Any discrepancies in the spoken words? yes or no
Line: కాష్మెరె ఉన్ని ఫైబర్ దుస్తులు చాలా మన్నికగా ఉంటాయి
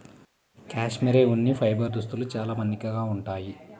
no